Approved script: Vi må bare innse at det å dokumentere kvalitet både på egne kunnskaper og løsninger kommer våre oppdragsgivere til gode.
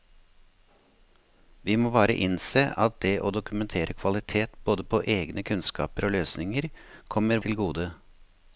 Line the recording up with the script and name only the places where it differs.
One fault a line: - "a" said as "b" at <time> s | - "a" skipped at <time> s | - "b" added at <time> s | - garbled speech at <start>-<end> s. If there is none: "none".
- "våre oppdragsgivere" skipped at 7.4 s